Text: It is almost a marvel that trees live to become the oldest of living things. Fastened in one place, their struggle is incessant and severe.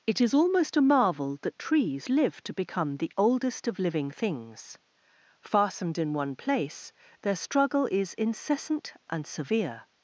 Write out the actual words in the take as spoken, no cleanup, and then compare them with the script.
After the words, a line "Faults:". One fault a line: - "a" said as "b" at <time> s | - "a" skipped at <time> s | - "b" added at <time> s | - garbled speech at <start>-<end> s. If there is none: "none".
It is almost a marvel that trees live to become the oldest of living things. Fastened in one place, their struggle is incessant and severe.
Faults:
none